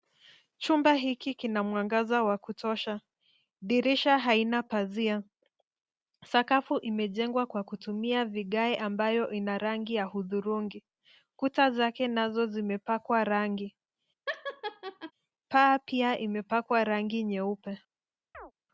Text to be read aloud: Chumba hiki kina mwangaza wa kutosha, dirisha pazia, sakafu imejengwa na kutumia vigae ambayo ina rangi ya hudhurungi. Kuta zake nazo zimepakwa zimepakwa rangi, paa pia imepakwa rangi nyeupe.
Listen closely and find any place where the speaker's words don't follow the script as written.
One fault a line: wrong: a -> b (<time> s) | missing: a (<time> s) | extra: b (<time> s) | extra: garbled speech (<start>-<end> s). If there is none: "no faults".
extra: haina (4.2 s)
wrong: na -> kwa (7.5 s)
missing: zimepakwa (13.2 s)